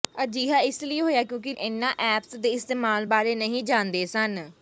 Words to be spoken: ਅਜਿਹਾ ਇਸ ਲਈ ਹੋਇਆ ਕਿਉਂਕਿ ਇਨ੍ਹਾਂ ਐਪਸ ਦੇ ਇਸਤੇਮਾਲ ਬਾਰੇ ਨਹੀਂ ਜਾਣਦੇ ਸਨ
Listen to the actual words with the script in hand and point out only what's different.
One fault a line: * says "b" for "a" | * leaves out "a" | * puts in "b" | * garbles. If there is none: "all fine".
all fine